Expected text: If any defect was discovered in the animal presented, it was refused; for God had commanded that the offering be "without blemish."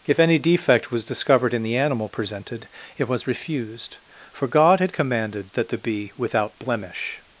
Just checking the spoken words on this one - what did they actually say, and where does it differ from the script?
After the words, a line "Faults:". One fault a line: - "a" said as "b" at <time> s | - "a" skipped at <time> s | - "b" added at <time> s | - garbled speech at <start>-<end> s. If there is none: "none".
If any defect was discovered in the animal presented, it was refused; for God had commanded that the be "without blemish."
Faults:
- "offering" skipped at 5.8 s